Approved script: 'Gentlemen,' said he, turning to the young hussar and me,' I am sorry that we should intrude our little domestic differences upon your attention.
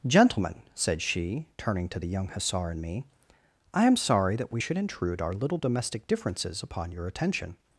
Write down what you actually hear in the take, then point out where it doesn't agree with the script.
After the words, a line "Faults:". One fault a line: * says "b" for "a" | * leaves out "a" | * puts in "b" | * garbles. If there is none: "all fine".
'Gentlemen,' said she, turning to the young hussar and me,' I am sorry that we should intrude our little domestic differences upon your attention.
Faults:
* says "she" for "he"